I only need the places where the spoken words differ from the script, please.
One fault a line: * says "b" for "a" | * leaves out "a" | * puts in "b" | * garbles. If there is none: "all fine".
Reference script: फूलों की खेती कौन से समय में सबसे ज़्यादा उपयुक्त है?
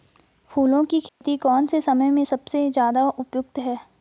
all fine